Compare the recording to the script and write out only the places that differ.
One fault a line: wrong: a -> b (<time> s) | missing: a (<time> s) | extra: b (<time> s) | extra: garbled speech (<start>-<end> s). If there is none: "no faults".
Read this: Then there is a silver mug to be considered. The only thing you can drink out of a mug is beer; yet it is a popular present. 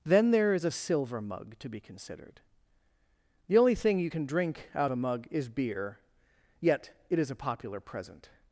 missing: of (4.9 s)